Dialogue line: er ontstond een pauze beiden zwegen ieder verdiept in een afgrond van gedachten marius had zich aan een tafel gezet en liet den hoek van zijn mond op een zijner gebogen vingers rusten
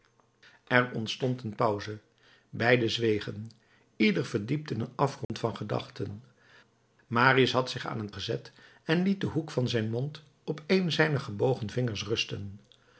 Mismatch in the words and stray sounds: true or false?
true